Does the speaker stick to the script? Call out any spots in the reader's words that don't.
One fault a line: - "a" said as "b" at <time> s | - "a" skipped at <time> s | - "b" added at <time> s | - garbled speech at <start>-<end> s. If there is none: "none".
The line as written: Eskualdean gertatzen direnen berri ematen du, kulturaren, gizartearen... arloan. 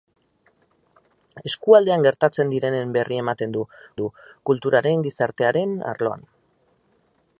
- "du" added at 4.0 s